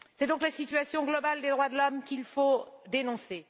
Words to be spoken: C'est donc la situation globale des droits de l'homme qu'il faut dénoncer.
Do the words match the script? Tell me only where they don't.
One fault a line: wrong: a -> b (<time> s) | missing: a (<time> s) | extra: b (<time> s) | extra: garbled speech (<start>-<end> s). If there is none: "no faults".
no faults